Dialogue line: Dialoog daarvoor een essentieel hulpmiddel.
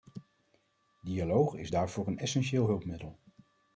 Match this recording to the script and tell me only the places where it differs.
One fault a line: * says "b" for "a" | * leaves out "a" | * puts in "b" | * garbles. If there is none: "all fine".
* puts in "is"